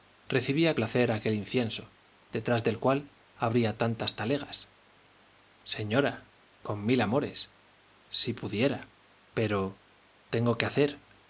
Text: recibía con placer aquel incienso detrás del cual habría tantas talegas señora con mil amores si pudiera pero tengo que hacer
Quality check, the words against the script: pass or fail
fail